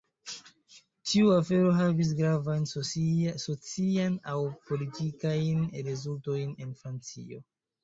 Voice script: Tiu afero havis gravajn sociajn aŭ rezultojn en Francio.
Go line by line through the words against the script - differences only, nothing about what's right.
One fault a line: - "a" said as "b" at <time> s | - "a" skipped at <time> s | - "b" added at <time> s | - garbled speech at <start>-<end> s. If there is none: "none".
- "politikajn" added at 4.7 s